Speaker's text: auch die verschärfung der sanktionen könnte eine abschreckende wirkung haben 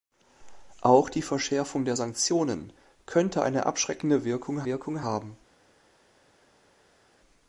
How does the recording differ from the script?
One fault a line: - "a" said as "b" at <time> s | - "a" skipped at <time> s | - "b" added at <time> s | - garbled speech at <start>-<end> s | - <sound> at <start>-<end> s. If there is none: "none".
- "wirkung" added at 4.6 s